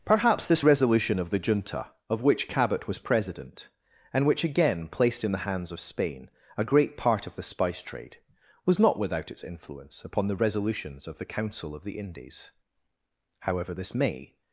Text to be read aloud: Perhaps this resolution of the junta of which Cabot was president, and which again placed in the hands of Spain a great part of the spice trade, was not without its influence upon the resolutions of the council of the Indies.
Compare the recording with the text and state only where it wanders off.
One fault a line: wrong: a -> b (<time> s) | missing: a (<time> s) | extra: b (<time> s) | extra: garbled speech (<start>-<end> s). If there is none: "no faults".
extra: However this may (13.4 s)